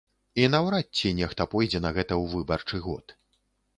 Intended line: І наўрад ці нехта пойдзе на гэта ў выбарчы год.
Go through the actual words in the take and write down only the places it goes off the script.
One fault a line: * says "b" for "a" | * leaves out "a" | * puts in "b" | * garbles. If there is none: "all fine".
all fine